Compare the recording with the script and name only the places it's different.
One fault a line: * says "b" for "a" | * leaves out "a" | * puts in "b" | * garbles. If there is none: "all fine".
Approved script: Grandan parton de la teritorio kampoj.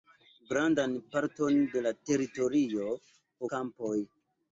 all fine